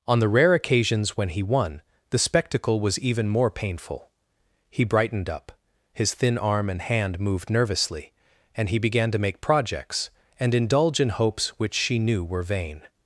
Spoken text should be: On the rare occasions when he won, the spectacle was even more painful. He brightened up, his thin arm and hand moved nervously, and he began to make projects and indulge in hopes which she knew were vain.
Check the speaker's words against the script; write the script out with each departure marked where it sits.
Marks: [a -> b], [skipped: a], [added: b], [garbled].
On the rare occasions when he won, the spectacle was even more painful. He brightened up, his thin arm and hand moved nervously, and he began to make projects and indulge in hopes which she knew were vain.